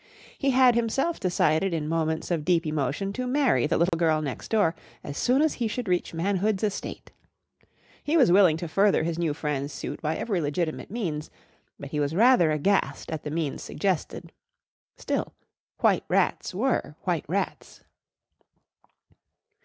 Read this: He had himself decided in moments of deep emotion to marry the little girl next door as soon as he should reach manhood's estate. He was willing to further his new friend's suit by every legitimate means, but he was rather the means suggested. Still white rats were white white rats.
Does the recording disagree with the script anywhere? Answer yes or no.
yes